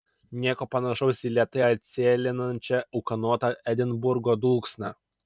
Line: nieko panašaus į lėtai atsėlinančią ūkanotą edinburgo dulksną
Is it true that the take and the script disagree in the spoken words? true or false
false